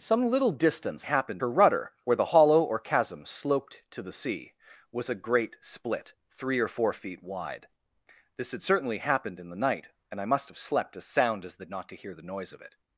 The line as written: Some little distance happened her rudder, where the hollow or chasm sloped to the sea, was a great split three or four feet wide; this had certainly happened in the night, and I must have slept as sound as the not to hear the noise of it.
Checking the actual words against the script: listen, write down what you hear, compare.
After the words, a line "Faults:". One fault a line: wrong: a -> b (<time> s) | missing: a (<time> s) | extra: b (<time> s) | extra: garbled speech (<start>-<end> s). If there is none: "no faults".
Some little distance happened her rudder, where the hollow or chasm sloped to the sea, was a great split three or four feet wide; this had certainly happened in the night, and I must have slept as sound as the not to hear the noise of it.
Faults:
no faults